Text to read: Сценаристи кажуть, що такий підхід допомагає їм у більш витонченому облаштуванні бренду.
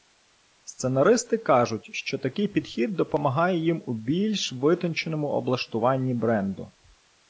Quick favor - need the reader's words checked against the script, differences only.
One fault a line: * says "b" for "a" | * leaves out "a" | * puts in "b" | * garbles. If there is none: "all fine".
all fine